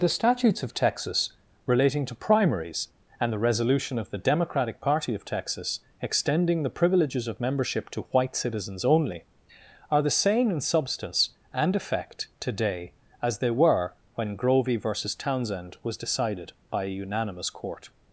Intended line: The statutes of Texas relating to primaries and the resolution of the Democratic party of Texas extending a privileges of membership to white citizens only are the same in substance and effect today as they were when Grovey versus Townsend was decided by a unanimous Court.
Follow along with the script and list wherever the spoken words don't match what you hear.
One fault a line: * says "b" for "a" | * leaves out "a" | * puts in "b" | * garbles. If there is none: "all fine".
* says "the" for "a"